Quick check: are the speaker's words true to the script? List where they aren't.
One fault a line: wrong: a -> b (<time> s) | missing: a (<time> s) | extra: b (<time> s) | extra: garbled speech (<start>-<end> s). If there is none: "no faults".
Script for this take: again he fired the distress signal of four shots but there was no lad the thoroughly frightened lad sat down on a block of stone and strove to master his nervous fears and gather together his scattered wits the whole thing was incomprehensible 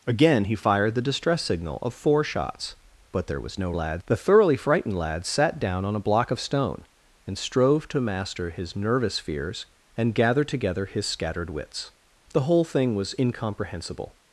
no faults